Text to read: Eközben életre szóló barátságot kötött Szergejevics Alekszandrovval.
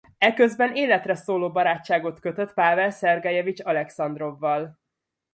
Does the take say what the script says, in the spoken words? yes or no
no